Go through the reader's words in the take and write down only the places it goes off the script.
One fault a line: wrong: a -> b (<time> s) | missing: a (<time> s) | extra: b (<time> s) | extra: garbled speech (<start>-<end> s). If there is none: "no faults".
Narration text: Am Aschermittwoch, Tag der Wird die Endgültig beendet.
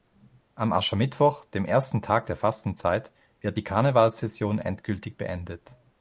extra: dem ersten (1.4 s)
extra: Fastenzeit (2.4 s)
extra: Karnevalssession (3.6 s)